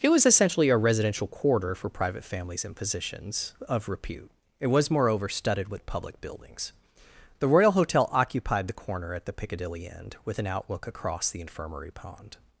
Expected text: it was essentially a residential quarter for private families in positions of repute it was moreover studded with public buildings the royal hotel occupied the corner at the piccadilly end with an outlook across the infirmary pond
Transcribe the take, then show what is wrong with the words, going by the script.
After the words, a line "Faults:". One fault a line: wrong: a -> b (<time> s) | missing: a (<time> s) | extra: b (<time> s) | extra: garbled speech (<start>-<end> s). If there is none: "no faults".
it was essentially a residential quarter for private families in positions of repute it was moreover studded with public buildings the royal hotel occupied the corner at the piccadilly end with an outlook across the infirmary pond
Faults:
no faults